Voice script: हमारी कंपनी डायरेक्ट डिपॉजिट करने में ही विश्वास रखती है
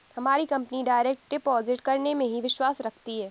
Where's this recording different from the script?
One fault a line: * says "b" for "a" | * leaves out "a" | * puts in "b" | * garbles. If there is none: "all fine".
all fine